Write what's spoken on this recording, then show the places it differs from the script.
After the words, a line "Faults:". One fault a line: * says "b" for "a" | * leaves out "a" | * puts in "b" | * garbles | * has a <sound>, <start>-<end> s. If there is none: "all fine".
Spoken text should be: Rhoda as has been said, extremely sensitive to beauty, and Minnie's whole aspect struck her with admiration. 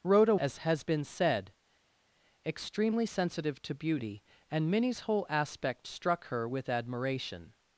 Rhoda as has been said, extremely sensitive to beauty, and Minnie's whole aspect struck her with admiration.
Faults:
all fine